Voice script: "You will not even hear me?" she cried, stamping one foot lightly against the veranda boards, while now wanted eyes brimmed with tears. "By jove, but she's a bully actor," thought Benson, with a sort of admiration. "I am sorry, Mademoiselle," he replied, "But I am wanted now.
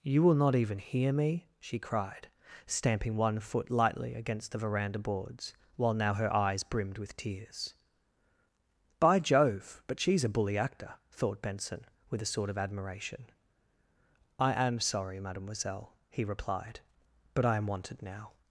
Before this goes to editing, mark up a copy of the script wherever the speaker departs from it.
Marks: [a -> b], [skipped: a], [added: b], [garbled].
"You will not even hear me?" she cried, stamping one foot lightly against the veranda boards, while now [wanted -> her] eyes brimmed with tears. "By jove, but she's a bully actor," thought Benson, with a sort of admiration. "I am sorry, Mademoiselle," he replied, "But I am wanted now.